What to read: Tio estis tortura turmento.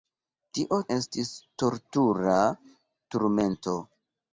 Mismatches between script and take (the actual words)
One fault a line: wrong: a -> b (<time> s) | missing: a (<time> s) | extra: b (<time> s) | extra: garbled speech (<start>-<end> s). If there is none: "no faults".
no faults